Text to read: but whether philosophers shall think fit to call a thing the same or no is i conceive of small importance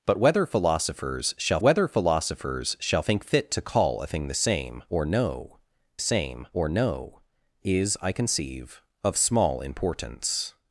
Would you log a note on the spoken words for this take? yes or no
yes